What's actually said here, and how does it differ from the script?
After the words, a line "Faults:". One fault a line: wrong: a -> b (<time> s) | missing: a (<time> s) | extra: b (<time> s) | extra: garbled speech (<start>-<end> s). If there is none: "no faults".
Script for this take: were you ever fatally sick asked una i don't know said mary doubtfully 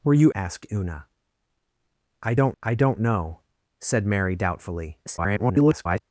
were you asked una i don't i don't know said mary doubtfully [garbled]
Faults:
wrong: ever fatally sick asked una -> asked una i don't (0.3 s)
extra: garbled speech (5.1-6.0 s)